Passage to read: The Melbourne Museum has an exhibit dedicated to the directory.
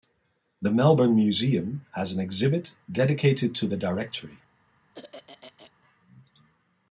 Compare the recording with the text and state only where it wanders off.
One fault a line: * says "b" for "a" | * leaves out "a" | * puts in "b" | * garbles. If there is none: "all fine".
all fine